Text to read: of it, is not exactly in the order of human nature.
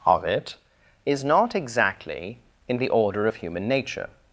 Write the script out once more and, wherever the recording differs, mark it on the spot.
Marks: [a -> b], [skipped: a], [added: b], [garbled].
of it, is not exactly in the order of human nature.